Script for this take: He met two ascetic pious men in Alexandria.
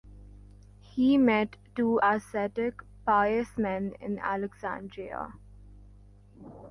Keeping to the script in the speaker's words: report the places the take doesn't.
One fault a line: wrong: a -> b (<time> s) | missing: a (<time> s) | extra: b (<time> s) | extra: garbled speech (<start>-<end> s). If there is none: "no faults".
no faults